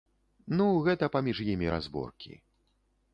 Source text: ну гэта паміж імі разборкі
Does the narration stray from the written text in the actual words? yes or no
no